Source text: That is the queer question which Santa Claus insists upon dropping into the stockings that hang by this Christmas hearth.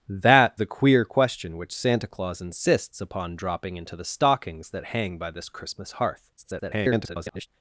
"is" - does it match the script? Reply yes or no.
no